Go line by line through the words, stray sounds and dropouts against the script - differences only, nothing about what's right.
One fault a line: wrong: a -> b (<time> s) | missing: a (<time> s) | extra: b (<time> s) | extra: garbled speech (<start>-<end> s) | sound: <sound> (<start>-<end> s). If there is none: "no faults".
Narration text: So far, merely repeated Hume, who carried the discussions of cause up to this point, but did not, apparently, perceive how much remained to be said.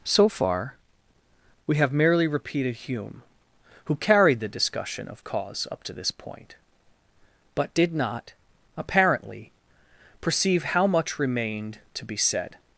extra: we have (1.7 s)
wrong: discussions -> discussion (4.5 s)